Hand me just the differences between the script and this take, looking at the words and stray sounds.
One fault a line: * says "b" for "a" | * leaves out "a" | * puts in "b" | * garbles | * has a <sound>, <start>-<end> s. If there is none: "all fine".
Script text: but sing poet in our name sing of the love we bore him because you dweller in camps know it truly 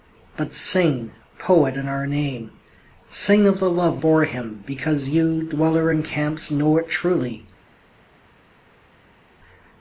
* leaves out "we"